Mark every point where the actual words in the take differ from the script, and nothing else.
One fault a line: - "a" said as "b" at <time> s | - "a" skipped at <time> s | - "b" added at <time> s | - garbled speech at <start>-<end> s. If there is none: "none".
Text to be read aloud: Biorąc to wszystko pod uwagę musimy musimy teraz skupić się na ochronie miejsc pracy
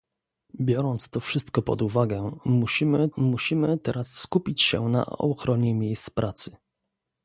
none